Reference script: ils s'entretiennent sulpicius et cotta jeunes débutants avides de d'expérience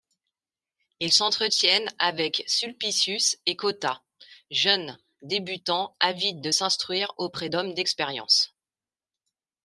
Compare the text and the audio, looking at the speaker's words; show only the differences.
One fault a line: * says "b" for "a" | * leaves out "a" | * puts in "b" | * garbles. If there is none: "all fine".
* puts in "avec"
* puts in "s'instruire auprès d'hommes"